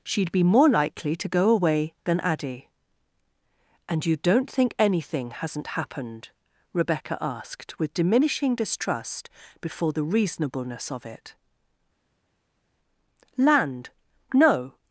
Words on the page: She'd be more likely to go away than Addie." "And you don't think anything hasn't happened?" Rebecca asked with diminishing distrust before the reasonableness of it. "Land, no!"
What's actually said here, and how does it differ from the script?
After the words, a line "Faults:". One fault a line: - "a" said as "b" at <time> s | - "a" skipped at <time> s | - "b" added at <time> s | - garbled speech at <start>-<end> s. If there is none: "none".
She'd be more likely to go away than Addie." "And you don't think anything hasn't happened?" Rebecca asked with diminishing distrust before the reasonableness of it. "Land, no!"
Faults:
none